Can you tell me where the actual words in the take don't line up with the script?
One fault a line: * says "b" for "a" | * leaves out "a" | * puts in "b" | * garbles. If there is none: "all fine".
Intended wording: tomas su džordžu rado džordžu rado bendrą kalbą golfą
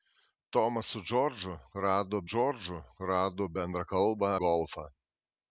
all fine